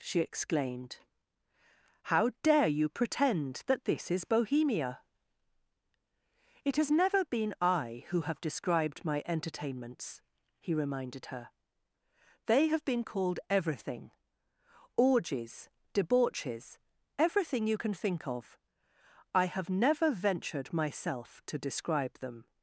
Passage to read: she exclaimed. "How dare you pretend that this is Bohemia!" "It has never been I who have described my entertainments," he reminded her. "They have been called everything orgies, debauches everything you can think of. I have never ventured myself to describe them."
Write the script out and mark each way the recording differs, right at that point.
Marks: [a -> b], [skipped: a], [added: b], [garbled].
she exclaimed. "How dare you pretend that this is Bohemia!" "It has never been I who have described my entertainments," he reminded her. "They have been called everything orgies, debauches everything you can think of. I have never ventured myself to describe them."